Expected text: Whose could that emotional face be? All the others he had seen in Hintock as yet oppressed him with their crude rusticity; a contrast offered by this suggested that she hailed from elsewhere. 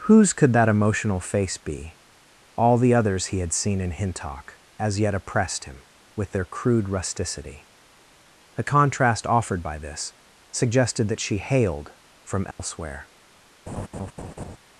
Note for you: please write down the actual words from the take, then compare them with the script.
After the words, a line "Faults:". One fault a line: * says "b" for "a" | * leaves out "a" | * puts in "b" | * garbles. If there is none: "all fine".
Whose could that emotional face be? All the others he had seen in Hintock as yet oppressed him with their crude rusticity; a contrast offered by this suggested that she hailed from elsewhere.
Faults:
all fine